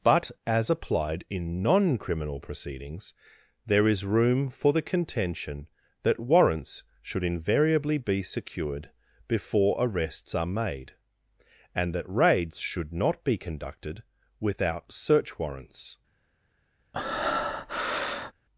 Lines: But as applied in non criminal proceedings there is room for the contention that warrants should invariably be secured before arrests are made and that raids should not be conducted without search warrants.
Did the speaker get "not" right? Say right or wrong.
right